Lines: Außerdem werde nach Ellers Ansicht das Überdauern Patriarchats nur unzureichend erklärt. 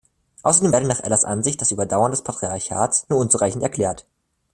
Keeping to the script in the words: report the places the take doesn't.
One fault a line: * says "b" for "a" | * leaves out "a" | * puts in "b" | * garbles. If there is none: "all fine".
* puts in "des"